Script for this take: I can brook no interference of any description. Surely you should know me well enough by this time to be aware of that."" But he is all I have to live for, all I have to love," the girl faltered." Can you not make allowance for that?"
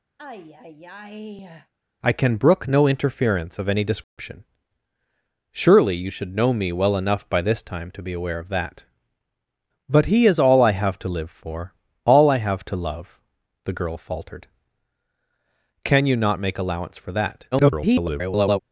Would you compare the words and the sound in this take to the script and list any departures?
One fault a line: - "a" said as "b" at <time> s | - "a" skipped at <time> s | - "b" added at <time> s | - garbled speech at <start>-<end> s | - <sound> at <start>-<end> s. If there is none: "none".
- sigh at 0.2-1.7 s
- dropout at 4.0-4.2 s
- garbled speech at 17.5-18.6 s